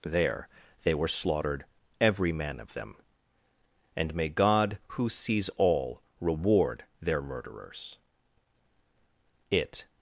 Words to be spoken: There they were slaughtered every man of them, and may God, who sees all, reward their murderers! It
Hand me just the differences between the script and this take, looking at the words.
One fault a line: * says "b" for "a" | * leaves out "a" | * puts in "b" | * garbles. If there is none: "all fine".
all fine